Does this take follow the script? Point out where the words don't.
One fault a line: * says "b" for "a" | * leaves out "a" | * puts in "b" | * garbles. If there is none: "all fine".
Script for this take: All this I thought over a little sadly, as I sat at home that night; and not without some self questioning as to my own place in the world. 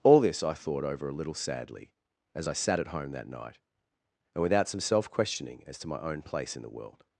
* leaves out "not"